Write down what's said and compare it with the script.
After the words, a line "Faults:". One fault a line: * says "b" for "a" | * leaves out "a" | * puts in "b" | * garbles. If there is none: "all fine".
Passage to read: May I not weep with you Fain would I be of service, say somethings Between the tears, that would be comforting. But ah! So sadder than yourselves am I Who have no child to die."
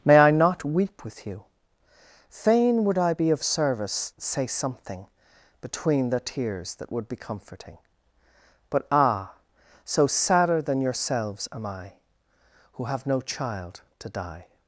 May I not weep with you Fain would I be of service, say something Between the tears, that would be comforting. But ah! So sadder than yourselves am I Who have no child to die."
Faults:
* says "something" for "somethings"